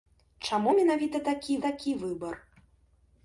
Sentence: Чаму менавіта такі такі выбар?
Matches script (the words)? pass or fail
pass